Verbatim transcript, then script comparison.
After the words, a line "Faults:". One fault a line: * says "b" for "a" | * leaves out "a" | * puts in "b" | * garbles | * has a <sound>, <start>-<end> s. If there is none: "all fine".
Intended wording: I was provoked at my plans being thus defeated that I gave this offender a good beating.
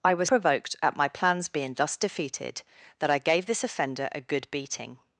I was provoked at my plans being thus defeated that I gave this offender a good beating.
Faults:
all fine